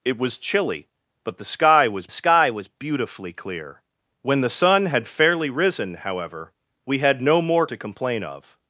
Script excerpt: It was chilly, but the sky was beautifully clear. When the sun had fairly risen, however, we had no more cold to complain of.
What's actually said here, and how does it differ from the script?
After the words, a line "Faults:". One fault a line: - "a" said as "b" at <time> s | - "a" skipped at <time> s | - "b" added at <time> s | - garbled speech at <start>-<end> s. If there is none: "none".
It was chilly, but the sky was sky was beautifully clear. When the sun had fairly risen, however, we had no more to complain of.
Faults:
- "sky was" added at 2.1 s
- "cold" skipped at 7.7 s